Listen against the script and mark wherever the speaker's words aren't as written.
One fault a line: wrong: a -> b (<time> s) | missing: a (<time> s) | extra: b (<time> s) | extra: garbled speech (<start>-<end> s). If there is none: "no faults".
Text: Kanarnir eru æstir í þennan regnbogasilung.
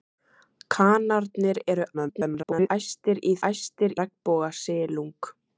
extra: garbled speech (1.9-2.7 s)
wrong: þennan -> æstir (3.5 s)